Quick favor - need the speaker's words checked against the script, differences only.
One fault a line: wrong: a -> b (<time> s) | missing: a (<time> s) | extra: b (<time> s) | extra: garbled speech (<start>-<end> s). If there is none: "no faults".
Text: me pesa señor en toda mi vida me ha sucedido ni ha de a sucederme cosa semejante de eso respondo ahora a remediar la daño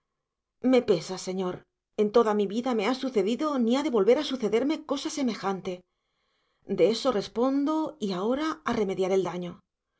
extra: volver (4.0 s)
extra: y (8.0 s)
wrong: la -> el (9.1 s)